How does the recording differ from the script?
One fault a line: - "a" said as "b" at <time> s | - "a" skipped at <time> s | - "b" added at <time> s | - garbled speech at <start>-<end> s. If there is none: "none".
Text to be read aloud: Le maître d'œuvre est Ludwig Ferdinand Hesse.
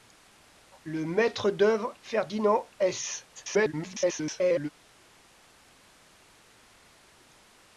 - "est Ludwig" skipped at 1.9 s
- garbled speech at 3.4-4.7 s